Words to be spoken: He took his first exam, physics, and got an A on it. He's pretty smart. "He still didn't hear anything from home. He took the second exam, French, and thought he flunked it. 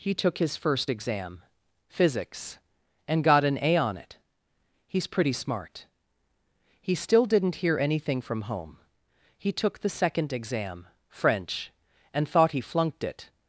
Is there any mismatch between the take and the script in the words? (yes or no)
no